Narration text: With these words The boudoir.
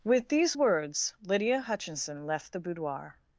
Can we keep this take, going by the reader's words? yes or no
no